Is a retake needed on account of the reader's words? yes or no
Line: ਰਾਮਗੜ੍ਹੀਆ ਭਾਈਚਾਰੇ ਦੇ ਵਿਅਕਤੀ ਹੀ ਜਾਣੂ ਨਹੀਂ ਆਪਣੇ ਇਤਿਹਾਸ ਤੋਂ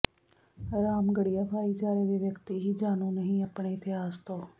no